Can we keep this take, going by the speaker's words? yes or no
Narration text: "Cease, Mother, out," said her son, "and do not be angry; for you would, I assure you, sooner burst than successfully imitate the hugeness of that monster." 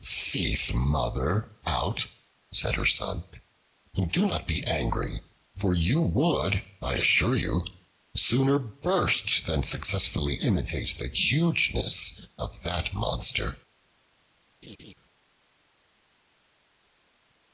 yes